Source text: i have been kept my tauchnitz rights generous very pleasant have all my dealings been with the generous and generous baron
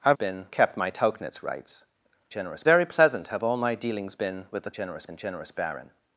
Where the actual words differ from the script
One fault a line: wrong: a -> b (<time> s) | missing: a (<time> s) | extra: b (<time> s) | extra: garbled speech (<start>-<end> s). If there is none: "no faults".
no faults